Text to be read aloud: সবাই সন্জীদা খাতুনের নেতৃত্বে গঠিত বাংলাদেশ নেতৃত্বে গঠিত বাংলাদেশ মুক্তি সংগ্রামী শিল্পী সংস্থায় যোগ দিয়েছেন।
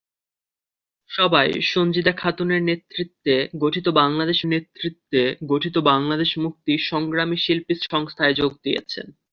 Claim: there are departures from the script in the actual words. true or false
false